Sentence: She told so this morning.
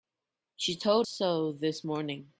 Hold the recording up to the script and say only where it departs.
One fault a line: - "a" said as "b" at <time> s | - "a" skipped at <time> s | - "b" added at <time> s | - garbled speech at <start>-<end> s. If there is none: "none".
none